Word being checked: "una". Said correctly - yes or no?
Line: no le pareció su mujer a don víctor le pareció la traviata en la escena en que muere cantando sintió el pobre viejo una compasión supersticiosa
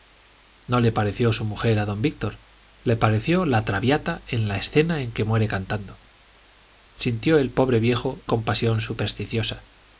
no